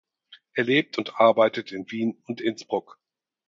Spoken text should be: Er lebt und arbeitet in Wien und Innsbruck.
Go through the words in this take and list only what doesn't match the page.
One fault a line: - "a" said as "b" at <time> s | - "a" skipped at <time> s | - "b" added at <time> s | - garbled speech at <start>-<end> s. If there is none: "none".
none